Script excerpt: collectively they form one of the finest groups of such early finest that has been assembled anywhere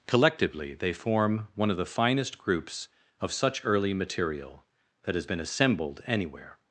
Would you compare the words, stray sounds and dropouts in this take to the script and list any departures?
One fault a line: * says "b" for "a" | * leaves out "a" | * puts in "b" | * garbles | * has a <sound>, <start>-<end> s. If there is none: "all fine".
* says "material" for "finest"